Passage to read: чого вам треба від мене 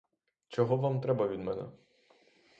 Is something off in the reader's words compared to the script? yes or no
no